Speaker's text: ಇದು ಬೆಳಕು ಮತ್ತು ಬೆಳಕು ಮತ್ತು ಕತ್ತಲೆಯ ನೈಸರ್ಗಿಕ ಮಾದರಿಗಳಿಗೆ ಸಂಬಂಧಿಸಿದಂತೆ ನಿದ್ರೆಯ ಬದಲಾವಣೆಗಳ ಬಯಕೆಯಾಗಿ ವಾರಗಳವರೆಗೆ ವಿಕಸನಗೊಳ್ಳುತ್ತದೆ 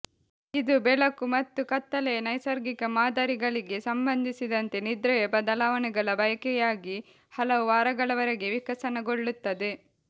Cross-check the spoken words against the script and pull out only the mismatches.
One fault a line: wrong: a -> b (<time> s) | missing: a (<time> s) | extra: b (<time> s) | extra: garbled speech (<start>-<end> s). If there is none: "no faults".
missing: ಬೆಳಕು ಮತ್ತು (1.6 s)
extra: ಹಲವು (7.3 s)